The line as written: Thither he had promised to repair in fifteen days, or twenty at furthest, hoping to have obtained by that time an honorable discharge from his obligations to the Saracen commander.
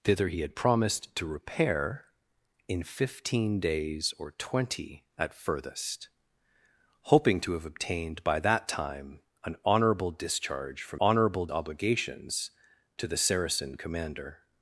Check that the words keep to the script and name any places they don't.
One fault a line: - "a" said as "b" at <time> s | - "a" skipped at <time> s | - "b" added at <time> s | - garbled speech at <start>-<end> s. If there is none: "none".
- "his" said as "honorable" at 11.0 s